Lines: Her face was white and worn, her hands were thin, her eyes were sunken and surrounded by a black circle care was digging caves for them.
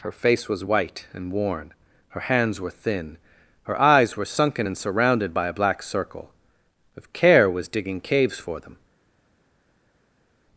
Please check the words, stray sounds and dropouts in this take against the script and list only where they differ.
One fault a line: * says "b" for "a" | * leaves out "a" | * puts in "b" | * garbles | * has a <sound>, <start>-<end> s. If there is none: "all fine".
* puts in "if"